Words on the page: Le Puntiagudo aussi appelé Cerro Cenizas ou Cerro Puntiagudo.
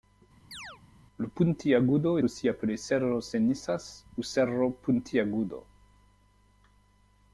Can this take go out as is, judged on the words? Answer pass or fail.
pass